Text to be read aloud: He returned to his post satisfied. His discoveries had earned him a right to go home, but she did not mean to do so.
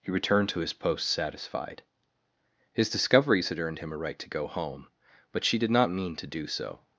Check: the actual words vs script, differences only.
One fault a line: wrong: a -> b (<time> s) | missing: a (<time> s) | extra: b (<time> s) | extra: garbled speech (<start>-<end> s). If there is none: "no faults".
no faults